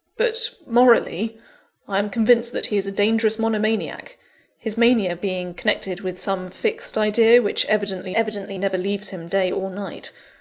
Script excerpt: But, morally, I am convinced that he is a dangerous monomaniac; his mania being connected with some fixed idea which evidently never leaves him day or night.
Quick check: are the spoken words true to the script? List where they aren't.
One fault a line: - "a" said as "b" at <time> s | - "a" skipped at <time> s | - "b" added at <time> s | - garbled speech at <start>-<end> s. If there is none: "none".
- "evidently" added at 8.1 s